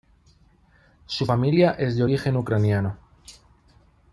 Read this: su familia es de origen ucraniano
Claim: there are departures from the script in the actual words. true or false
false